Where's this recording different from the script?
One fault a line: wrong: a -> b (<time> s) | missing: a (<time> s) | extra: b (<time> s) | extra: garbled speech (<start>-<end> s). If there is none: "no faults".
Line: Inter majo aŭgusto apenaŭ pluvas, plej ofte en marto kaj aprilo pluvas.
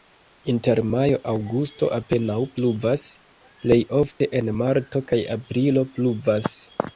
no faults